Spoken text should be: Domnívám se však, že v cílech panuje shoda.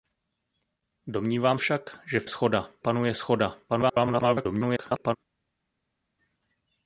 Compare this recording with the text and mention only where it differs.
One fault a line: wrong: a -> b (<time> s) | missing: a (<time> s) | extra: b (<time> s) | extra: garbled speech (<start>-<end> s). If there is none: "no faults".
missing: se (1.6 s)
wrong: cílech -> shoda (2.3 s)
extra: garbled speech (3.7-5.2 s)